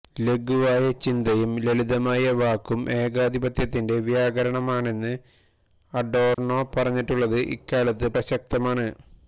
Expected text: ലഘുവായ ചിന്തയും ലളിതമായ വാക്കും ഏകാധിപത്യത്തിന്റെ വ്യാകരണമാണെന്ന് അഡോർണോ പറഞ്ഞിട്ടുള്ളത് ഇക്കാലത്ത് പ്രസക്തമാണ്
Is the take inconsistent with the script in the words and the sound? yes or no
yes